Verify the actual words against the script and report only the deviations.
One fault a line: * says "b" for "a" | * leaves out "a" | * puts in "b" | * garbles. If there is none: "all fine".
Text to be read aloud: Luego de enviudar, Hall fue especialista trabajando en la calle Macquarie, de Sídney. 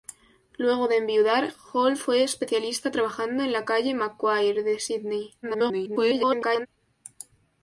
* garbles